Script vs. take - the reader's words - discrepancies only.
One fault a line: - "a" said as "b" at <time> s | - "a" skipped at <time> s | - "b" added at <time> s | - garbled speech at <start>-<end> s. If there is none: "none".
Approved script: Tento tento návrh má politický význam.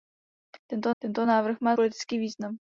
none